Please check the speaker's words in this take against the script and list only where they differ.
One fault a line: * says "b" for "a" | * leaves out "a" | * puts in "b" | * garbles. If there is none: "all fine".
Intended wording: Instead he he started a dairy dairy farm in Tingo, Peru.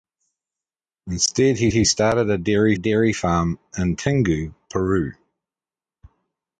all fine